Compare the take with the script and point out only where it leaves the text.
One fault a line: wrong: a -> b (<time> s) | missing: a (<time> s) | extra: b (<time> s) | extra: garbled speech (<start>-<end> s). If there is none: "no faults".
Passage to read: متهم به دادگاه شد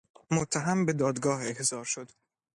extra: احضار (1.4 s)